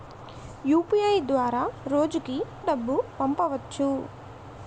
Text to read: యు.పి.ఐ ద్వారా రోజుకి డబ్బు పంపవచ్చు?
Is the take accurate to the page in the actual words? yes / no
yes